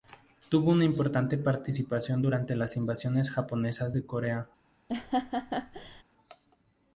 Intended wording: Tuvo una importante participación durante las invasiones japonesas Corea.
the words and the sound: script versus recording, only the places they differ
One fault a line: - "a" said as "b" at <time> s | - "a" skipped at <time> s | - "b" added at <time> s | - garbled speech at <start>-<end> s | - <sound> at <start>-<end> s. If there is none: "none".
- "de" added at 3.9 s
- laugh at 4.9-6.0 s